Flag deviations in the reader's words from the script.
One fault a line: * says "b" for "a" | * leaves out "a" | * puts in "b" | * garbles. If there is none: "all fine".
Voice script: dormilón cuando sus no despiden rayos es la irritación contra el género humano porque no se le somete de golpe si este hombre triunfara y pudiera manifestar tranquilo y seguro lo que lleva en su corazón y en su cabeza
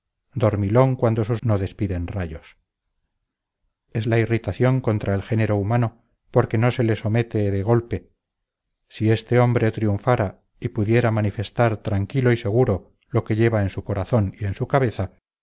all fine